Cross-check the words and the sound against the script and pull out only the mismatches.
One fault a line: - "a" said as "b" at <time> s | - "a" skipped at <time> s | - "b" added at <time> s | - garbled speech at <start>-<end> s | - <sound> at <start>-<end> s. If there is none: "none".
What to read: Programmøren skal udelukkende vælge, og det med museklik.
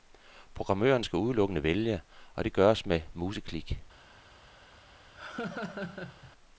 - "gøres" added at 2.5 s
- laugh at 5.1-6.3 s